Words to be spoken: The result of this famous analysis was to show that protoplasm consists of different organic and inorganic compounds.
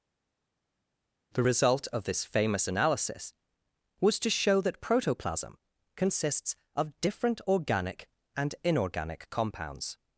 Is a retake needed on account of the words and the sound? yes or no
no